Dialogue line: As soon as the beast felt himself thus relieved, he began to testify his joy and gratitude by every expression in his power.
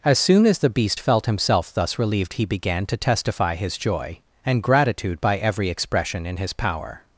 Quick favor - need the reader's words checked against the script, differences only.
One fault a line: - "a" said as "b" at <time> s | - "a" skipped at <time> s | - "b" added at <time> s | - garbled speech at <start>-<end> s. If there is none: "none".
none